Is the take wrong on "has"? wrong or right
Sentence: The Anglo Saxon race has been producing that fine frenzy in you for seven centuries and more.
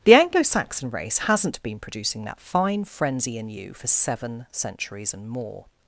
wrong